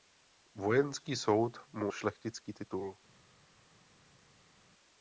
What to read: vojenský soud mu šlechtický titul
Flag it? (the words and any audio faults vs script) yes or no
no